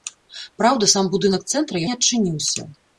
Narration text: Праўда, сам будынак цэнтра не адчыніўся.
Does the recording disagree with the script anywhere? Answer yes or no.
no